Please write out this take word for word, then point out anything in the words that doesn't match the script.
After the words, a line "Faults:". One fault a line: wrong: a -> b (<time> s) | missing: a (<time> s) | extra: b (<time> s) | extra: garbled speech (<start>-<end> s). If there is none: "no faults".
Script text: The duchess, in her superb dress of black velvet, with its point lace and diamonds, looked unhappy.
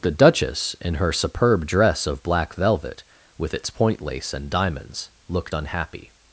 The duchess, in her superb dress of black velvet, with its point lace and diamonds, looked unhappy.
Faults:
no faults